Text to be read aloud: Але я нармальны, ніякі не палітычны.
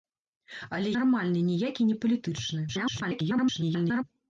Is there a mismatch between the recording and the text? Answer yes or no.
yes